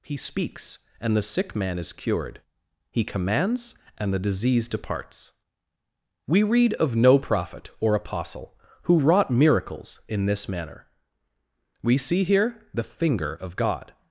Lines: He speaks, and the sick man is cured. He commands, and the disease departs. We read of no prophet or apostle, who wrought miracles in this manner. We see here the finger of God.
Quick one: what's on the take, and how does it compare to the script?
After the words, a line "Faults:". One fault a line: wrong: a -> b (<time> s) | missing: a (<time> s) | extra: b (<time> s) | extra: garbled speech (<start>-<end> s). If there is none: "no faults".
He speaks, and the sick man is cured. He commands, and the disease departs. We read of no prophet or apostle, who wrought miracles in this manner. We see here the finger of God.
Faults:
no faults